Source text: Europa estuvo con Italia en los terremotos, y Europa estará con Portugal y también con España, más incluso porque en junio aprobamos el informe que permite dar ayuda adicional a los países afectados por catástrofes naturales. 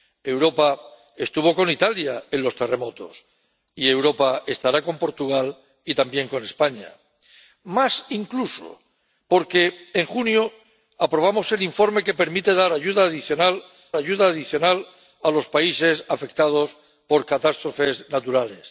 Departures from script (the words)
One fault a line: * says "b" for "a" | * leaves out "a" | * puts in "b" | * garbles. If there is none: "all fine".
* puts in "ayuda adicional"